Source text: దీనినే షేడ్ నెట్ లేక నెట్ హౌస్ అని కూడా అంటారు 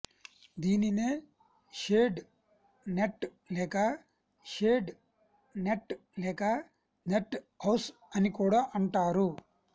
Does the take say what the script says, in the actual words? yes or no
no